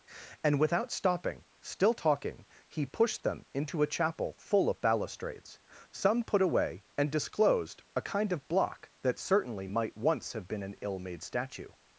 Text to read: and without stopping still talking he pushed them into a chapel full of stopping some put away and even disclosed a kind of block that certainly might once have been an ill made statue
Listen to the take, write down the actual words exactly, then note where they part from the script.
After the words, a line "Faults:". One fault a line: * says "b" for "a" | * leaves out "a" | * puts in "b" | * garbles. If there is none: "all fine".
and without stopping still talking he pushed them into a chapel full of balustrades some put away and disclosed a kind of block that certainly might once have been an ill made statue
Faults:
* says "balustrades" for "stopping"
* leaves out "even"